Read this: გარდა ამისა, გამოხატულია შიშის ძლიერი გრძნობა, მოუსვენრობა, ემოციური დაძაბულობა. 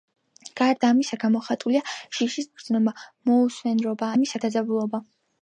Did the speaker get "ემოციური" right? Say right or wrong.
wrong